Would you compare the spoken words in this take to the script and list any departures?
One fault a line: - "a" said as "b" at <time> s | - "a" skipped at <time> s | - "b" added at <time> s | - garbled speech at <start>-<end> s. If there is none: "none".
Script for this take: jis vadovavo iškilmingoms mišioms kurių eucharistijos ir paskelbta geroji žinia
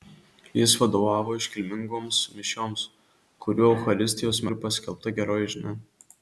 none